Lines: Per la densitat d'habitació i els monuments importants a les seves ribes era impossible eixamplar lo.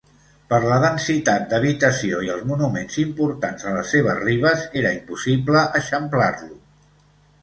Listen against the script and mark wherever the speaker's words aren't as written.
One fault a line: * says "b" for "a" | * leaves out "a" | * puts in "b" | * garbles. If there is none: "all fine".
all fine